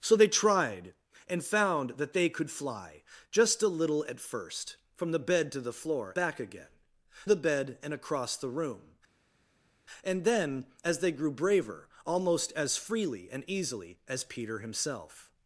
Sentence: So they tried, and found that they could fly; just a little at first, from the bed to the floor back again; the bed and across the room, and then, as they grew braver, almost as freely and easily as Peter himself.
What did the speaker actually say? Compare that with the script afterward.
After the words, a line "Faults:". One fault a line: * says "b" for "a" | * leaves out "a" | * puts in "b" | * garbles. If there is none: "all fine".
So they tried, and found that they could fly; just a little at first, from the bed to the floor back again; the bed and across the room, and then, as they grew braver, almost as freely and easily as Peter himself.
Faults:
all fine